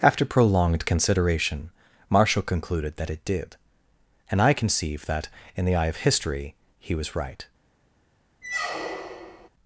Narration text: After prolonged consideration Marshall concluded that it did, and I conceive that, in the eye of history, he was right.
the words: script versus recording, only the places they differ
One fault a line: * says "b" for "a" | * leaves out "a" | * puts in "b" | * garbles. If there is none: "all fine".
all fine